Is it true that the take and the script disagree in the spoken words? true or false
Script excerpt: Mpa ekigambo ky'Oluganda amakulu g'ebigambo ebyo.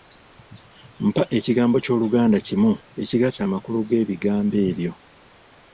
true